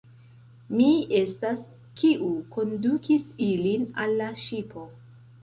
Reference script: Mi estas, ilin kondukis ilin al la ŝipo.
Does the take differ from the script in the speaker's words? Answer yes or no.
yes